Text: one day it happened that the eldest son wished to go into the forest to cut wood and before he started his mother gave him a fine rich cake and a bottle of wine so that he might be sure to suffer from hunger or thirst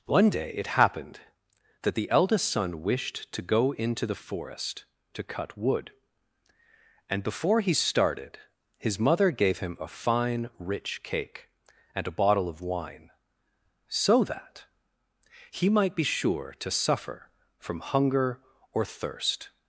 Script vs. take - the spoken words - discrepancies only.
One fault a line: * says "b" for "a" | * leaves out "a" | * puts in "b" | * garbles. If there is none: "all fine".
all fine